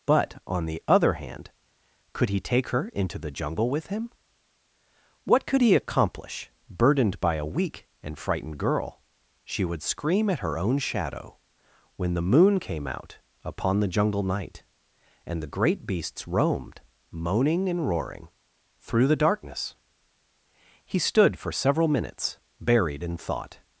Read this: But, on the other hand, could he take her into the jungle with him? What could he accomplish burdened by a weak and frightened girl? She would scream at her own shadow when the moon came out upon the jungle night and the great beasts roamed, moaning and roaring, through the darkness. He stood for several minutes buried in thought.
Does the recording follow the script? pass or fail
pass